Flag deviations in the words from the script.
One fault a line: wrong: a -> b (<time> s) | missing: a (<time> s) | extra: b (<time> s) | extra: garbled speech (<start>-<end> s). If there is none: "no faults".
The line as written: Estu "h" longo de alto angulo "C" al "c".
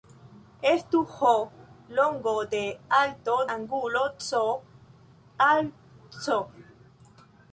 no faults